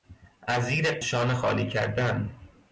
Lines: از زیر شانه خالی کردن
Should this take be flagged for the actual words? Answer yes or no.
no